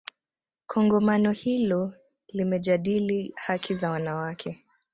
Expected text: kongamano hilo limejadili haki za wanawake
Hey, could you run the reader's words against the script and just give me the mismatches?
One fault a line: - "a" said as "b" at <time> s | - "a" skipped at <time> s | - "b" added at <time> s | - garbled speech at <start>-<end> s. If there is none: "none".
none